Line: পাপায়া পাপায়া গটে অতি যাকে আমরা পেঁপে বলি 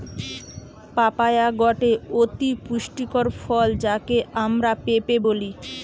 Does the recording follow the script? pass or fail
fail